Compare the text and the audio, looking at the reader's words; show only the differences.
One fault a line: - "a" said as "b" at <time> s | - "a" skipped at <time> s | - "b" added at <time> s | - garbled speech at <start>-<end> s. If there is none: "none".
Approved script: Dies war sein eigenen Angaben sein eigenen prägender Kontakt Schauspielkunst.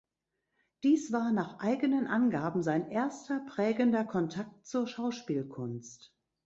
- "sein" said as "nach" at 1.3 s
- "eigenen" said as "erster" at 2.9 s
- "zur" added at 4.6 s